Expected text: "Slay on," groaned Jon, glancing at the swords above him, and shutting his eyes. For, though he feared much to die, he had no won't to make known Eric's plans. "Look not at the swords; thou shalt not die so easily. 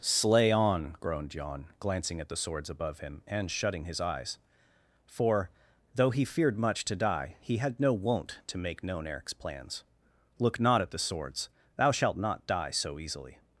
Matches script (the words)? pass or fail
pass